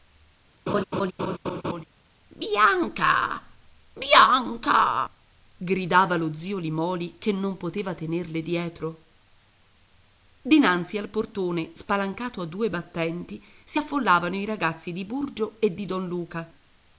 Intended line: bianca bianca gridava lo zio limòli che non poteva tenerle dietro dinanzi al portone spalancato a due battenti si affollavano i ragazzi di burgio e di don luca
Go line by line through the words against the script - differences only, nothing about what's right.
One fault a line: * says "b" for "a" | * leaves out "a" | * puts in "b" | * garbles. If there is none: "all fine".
all fine